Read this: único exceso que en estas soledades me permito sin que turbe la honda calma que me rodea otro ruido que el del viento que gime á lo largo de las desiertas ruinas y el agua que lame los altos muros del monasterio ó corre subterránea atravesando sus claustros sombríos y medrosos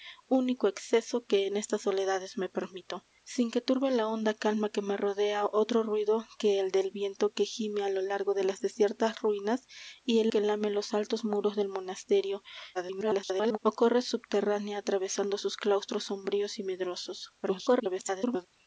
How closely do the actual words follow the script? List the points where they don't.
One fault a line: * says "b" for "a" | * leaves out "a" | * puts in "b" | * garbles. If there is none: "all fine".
* leaves out "agua"
* garbles
* garbles